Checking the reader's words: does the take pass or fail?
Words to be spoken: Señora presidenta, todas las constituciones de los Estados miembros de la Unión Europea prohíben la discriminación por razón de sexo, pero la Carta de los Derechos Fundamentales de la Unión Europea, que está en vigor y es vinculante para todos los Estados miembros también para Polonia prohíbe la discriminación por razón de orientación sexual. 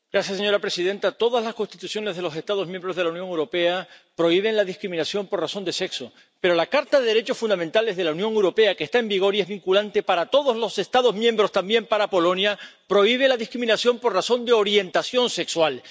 pass